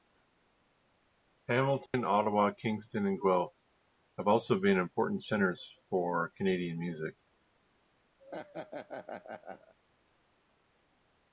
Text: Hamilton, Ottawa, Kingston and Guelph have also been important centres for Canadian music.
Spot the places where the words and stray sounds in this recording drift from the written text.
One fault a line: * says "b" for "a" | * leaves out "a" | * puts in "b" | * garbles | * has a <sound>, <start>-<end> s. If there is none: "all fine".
* has a dropout, 1.9-1.9 s
* has a laugh, 8.2-9.7 s